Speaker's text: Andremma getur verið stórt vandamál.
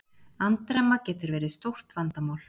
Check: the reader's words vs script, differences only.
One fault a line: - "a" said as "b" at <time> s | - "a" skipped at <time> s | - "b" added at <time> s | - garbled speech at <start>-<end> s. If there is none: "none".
none